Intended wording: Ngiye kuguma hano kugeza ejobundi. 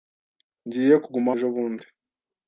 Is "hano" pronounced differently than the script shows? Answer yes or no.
yes